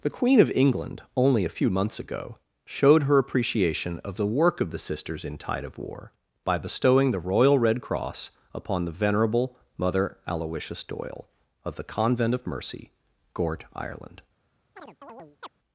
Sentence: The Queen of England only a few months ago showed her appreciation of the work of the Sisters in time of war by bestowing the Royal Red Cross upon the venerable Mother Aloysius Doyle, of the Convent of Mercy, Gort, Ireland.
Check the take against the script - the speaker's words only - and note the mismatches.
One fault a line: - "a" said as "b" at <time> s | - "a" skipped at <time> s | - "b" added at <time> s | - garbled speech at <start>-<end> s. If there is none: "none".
- "time" said as "tide" at 5.4 s